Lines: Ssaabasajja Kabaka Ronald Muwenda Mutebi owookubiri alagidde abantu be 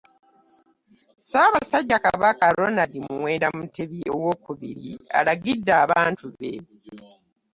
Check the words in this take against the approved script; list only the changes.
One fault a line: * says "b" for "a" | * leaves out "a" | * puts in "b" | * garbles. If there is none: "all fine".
all fine